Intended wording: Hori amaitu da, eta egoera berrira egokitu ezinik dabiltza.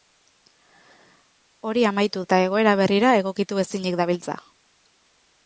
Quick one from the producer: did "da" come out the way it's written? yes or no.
no